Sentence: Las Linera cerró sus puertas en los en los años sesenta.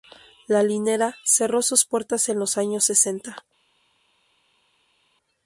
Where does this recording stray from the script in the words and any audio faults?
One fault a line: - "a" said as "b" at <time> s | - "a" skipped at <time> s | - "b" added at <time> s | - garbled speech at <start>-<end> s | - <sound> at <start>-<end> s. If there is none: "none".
- "Las" said as "La" at 0.5 s
- "en los" skipped at 2.6 s